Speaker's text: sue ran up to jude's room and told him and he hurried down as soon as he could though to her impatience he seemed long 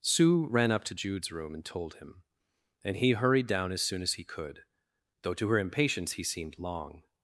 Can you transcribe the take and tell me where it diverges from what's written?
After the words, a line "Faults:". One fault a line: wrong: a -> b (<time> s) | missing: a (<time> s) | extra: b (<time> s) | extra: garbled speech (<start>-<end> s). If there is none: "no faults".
sue ran up to jude's room and told him and he hurried down as soon as he could though to her impatience he seemed long
Faults:
no faults